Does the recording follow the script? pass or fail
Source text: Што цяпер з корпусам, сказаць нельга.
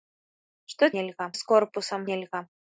fail